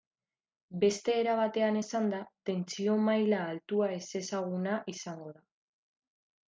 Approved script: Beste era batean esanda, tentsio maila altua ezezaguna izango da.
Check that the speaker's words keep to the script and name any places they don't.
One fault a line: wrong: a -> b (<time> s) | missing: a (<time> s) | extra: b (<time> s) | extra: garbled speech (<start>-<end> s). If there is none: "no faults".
no faults